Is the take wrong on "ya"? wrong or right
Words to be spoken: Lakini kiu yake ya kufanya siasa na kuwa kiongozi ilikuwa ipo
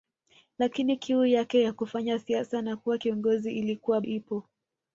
right